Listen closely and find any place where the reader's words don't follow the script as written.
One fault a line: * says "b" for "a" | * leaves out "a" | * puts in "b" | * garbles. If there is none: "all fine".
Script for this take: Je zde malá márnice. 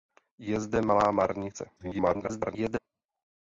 * garbles